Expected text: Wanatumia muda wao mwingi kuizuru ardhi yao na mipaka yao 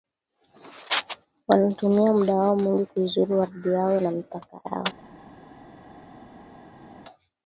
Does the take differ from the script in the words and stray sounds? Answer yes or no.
no